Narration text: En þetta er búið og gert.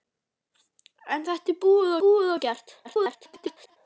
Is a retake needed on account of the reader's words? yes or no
yes